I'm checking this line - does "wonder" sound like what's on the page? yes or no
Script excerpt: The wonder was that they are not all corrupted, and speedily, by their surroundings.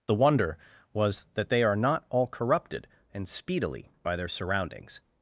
yes